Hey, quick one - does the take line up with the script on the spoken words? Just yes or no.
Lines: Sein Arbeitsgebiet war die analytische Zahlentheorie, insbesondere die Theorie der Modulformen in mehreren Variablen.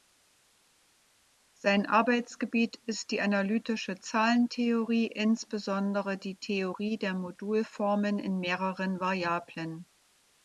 no